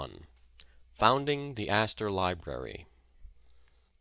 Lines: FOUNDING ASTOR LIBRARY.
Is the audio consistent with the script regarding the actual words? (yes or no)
no